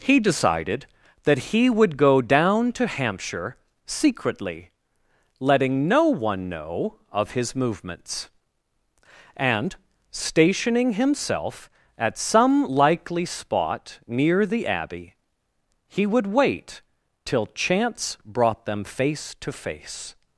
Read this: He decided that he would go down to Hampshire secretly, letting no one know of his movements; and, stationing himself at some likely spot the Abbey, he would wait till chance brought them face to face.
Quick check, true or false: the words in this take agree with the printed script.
false